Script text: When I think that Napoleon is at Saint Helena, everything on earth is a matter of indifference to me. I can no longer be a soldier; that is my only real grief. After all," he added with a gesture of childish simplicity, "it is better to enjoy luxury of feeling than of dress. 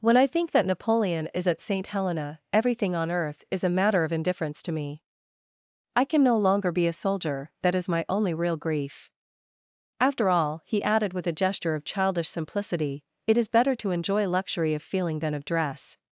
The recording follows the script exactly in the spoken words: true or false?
true